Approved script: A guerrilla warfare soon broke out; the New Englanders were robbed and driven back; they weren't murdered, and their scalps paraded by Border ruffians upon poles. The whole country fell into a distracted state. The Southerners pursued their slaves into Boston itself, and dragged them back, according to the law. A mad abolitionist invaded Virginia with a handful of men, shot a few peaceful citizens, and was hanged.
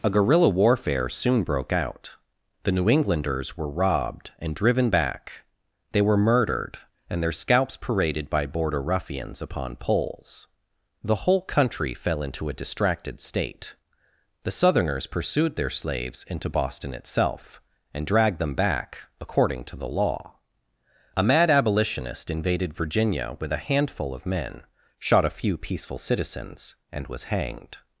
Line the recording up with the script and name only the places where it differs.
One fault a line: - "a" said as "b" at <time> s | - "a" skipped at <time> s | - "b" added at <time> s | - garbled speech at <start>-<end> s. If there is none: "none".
- "weren't" said as "were" at 6.0 s